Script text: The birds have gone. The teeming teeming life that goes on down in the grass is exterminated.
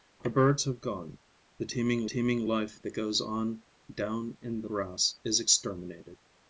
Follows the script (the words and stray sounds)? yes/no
yes